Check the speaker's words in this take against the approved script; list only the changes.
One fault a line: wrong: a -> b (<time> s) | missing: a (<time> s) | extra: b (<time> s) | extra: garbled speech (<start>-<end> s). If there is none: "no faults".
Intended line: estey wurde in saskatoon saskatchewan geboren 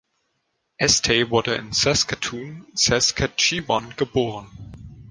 no faults